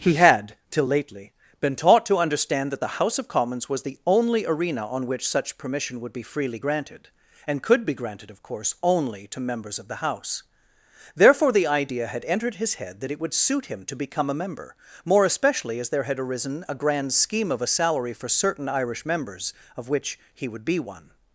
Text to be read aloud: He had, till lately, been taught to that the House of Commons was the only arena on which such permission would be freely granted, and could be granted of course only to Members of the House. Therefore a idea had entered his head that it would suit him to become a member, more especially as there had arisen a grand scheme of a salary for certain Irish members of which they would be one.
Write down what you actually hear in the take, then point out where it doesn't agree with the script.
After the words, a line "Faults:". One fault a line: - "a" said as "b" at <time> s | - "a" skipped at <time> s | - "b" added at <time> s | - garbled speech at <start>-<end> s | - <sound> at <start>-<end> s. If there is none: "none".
He had, till lately, been taught to understand that the House of Commons was the only arena on which such permission would be freely granted, and could be granted of course only to Members of the House. Therefore the idea had entered his head that it would suit him to become a member, more especially as there had arisen a grand scheme of a salary for certain Irish members of which he would be one.
Faults:
- "understand" added at 2.2 s
- "a" said as "the" at 11.5 s
- "they" said as "he" at 20.3 s